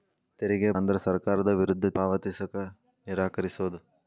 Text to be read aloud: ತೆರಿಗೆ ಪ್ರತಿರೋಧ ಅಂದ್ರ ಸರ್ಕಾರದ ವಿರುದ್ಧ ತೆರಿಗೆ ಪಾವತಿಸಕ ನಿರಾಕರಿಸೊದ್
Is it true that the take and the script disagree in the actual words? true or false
true